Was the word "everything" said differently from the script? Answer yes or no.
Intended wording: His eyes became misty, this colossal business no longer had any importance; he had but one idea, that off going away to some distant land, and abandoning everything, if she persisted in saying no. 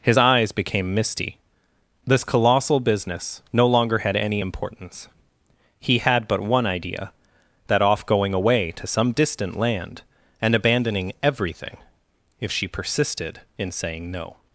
no